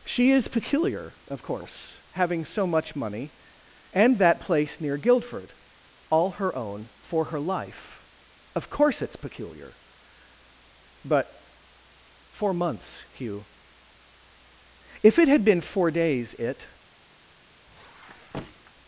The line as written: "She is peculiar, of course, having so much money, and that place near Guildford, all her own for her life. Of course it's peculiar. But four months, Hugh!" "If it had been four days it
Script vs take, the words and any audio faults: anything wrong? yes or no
yes